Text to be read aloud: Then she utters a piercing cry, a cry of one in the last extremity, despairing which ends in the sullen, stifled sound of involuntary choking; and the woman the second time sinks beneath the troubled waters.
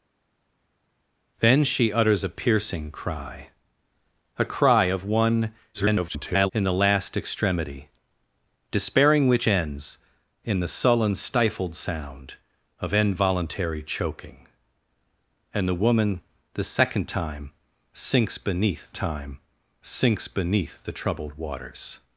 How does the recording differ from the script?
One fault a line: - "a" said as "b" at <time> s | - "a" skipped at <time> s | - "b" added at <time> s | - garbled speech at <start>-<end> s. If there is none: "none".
- garbled speech at 5.7-6.5 s
- "time sinks beneath" added at 18.9 s